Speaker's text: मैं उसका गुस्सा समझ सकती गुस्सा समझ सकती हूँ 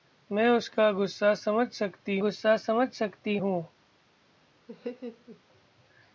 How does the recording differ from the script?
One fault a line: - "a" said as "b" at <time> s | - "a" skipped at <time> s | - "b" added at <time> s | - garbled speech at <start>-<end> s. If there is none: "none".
none